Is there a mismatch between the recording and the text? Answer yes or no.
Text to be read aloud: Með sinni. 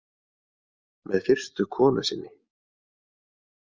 yes